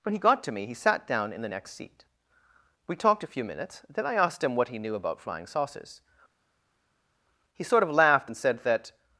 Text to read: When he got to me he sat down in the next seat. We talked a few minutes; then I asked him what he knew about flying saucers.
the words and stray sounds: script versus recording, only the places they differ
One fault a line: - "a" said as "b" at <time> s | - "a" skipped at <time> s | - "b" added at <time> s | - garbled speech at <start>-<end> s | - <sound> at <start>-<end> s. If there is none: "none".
- "He sort of laughed and said that" added at 7.5 s